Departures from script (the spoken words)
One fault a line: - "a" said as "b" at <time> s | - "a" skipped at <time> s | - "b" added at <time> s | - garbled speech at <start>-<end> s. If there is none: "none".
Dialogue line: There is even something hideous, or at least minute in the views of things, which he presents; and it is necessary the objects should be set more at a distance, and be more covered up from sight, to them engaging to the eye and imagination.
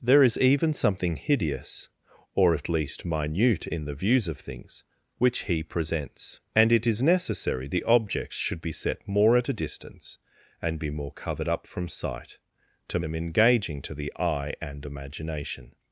none